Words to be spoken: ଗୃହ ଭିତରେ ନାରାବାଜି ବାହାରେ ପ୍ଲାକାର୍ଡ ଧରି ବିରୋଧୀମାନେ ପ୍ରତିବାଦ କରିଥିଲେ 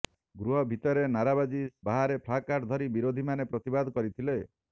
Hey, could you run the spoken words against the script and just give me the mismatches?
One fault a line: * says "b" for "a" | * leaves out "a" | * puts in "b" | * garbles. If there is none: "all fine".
all fine